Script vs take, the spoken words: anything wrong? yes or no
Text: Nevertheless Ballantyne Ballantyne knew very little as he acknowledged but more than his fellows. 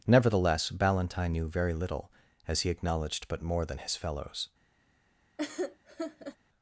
yes